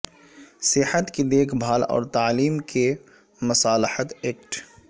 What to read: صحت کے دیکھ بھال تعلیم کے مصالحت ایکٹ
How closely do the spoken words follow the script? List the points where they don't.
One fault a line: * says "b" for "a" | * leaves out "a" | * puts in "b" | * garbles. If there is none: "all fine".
* says "کی" for "کے"
* puts in "اور"